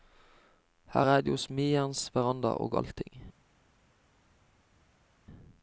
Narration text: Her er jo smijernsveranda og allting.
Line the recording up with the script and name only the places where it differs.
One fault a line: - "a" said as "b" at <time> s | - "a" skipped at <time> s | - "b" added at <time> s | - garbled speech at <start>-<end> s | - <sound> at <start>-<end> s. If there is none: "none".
- "det" added at 1.2 s